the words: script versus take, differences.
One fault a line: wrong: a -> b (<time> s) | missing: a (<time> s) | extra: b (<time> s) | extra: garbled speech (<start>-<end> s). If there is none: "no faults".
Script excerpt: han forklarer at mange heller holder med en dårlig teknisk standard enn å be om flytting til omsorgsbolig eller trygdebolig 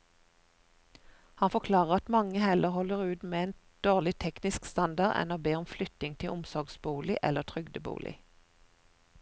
extra: ut (3.0 s)